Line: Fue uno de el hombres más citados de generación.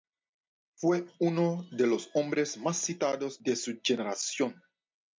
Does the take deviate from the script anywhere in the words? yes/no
yes